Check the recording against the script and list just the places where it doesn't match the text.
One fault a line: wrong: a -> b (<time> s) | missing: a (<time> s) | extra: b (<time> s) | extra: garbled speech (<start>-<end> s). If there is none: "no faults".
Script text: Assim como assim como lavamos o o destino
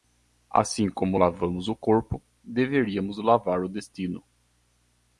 wrong: assim como lavamos o -> lavamos o corpo deveríamos lavar (1.2 s)